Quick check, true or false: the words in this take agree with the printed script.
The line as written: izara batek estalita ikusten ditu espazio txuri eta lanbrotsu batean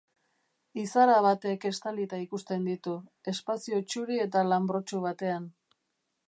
true